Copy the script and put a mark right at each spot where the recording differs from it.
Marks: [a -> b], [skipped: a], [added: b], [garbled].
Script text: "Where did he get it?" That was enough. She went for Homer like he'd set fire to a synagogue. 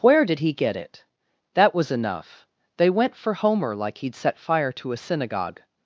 "Where did he get it?" That was enough. [She -> They] went for Homer like he'd set fire to a synagogue.